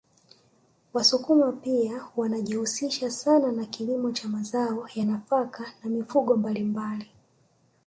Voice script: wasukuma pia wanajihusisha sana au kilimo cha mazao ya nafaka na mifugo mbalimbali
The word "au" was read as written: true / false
false